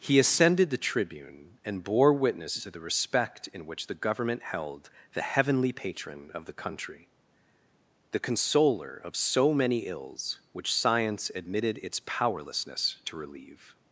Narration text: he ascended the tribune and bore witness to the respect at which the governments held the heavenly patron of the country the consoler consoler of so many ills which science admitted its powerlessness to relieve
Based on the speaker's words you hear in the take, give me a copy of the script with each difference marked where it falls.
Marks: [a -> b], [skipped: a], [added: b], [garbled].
he ascended the tribune and bore witness to the respect [at -> in] which the [governments -> government] held the heavenly patron of the country the consoler [skipped: consoler] of so many ills which science admitted its powerlessness to relieve